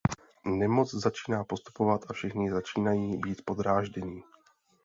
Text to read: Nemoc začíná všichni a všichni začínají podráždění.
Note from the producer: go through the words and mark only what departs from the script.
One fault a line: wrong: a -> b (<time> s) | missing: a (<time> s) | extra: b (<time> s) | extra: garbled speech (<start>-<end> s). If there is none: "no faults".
wrong: všichni -> postupovat (1.4 s)
extra: být (3.2 s)